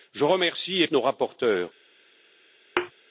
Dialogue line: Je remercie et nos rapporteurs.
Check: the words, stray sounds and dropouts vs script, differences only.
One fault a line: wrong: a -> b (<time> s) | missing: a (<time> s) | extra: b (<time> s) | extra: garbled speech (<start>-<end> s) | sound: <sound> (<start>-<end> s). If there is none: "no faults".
sound: thud (2.8-2.9 s)